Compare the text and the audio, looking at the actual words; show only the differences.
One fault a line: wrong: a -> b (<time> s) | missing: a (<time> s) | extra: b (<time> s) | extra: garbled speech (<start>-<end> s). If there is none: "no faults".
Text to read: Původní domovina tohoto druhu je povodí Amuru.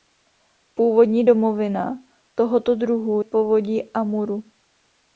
missing: je (3.2 s)